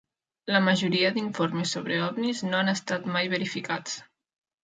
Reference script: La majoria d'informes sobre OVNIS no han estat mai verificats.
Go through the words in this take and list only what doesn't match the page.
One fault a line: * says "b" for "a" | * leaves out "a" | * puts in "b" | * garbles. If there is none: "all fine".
all fine